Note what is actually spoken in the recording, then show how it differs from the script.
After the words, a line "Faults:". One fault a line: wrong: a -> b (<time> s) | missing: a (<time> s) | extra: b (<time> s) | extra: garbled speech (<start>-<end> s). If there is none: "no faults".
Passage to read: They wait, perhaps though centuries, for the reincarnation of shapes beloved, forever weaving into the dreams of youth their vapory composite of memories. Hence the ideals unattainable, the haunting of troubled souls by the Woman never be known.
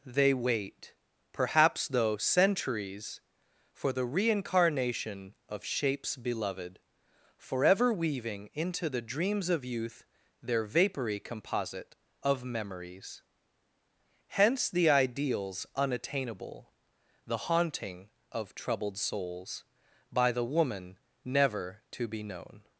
They wait, perhaps though centuries, for the reincarnation of shapes beloved, forever weaving into the dreams of youth their vapory composite of memories. Hence the ideals unattainable, the haunting of troubled souls by the Woman never to be known.
Faults:
extra: to (21.9 s)